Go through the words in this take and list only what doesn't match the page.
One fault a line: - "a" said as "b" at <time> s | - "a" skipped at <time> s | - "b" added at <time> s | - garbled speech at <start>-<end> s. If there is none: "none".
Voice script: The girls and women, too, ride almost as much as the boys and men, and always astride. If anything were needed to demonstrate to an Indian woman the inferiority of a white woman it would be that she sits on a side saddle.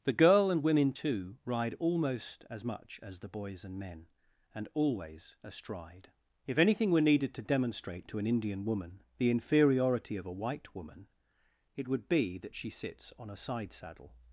- "girls" said as "girl" at 0.1 s